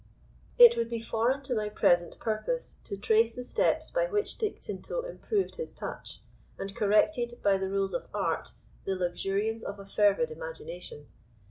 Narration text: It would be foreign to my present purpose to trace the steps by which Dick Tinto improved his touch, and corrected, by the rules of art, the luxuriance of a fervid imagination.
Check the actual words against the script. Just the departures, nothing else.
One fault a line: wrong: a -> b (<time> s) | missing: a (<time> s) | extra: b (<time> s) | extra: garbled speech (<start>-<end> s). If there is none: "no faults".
no faults